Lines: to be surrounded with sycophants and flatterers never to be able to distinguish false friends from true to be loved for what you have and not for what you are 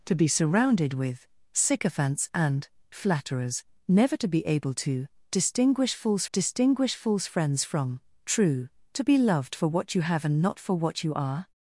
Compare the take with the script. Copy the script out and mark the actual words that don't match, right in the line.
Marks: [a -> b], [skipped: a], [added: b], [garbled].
to be surrounded with sycophants and flatterers never to be able to distinguish false [added: distinguish false] friends from true to be loved for what you have and not for what you are